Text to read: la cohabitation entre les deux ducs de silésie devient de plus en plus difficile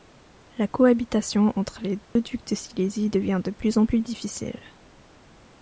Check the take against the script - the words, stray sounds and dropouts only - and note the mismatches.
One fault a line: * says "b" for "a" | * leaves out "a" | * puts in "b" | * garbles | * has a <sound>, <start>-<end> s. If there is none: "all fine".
* has a dropout, 2.0-2.2 s